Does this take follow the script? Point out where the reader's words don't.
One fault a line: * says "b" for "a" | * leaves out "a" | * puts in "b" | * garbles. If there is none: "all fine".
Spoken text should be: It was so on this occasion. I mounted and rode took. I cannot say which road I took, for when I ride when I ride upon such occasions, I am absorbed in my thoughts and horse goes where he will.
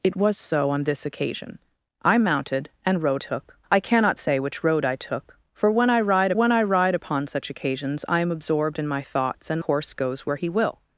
all fine